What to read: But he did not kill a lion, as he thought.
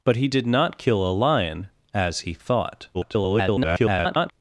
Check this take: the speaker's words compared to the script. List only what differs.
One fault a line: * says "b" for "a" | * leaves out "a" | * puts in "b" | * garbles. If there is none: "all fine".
* garbles